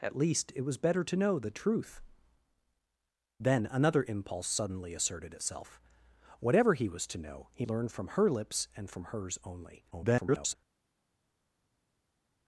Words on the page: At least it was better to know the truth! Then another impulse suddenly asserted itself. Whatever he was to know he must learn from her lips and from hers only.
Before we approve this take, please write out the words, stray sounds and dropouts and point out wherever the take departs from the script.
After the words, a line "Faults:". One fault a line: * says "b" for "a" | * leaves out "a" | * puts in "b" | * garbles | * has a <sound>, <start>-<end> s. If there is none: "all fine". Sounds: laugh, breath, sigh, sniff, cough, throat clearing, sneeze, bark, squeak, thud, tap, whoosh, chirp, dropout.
At least it was better to know the truth! Then another impulse suddenly asserted itself. Whatever he was to know he learn from her lips and from hers only. [garbled]
Faults:
* leaves out "must"
* garbles